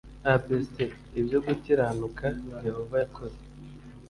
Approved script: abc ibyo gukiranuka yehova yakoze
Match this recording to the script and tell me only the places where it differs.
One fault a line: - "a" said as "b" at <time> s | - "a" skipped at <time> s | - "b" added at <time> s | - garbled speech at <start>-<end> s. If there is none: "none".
none